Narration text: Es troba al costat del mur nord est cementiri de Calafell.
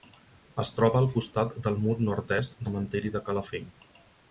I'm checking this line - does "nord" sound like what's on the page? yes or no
yes